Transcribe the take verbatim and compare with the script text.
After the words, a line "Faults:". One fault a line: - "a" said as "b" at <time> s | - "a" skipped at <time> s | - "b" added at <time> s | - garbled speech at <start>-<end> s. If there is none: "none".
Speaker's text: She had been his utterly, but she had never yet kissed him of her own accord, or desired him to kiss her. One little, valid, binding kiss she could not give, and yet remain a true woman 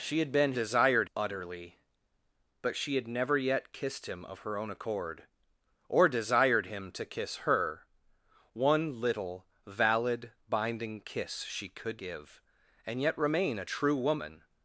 She had been desired utterly, but she had never yet kissed him of her own accord, or desired him to kiss her. One little, valid, binding kiss she could give, and yet remain a true woman
Faults:
- "his" said as "desired" at 0.5 s
- "not" skipped at 12.0 s